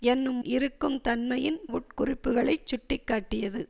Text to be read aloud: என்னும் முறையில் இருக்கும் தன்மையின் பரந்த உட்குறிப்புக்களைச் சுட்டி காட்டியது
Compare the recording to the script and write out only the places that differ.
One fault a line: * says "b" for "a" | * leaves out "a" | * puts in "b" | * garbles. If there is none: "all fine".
* leaves out "முறையில்"
* leaves out "பரந்த"